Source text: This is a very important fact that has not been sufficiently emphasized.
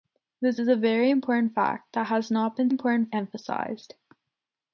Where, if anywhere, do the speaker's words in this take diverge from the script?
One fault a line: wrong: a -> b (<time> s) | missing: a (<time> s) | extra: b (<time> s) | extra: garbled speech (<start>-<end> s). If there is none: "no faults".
wrong: sufficiently -> important (2.7 s)